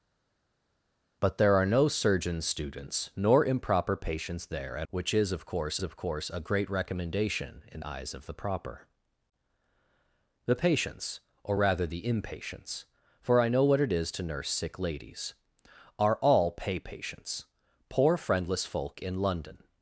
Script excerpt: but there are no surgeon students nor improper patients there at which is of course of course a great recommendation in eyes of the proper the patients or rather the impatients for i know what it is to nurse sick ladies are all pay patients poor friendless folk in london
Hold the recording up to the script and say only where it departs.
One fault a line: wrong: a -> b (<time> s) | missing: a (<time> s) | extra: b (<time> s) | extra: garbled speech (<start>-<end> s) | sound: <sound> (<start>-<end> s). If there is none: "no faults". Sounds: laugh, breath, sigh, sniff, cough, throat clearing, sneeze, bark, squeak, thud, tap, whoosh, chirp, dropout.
no faults